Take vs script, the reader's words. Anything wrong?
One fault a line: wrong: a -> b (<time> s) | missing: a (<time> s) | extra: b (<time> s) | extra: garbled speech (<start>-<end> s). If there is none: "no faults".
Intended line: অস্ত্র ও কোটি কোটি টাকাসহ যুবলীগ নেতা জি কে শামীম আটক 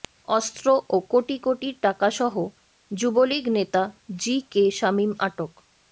no faults